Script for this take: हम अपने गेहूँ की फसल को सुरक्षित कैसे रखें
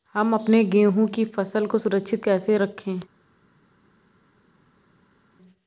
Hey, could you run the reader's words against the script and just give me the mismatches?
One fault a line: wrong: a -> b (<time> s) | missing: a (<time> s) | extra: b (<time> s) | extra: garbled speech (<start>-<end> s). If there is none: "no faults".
no faults